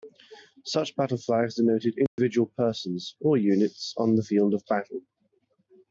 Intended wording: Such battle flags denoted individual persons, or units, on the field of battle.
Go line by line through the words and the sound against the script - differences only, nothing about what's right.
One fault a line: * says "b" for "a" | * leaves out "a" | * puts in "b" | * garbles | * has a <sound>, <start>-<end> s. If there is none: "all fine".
* has a dropout, 2.1-2.2 s